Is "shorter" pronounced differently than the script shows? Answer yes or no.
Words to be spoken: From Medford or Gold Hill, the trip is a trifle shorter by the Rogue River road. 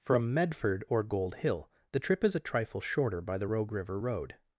no